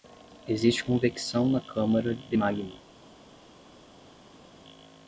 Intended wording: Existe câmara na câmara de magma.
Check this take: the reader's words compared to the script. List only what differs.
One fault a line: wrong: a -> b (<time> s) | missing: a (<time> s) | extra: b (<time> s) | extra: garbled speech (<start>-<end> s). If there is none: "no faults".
wrong: câmara -> convecção (0.8 s)